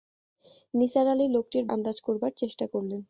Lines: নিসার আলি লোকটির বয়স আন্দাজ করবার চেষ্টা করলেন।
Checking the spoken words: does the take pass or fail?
fail